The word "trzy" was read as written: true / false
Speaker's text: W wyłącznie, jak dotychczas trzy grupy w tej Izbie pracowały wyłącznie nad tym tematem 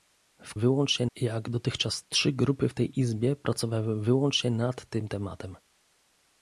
true